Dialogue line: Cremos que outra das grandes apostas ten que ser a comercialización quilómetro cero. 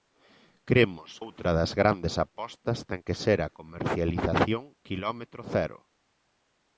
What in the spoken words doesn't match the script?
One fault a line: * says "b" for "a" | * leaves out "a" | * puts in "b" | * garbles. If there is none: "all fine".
* leaves out "que"